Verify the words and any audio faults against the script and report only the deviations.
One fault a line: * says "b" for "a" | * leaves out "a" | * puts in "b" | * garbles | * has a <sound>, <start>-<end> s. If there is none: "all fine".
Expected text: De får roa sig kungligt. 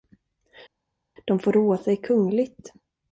all fine